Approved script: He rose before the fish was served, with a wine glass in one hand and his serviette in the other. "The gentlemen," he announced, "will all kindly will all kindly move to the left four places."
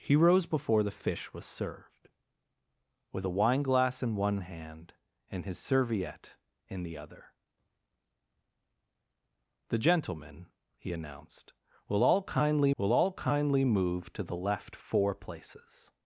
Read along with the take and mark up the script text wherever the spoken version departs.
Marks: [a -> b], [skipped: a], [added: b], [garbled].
He rose before the fish was served, with a wine glass in one hand and his serviette in the other. "The gentlemen," he announced, "will all kindly will all kindly move to the left four places."